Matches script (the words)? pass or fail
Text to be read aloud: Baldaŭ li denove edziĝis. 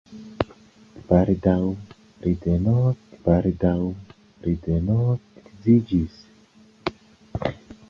fail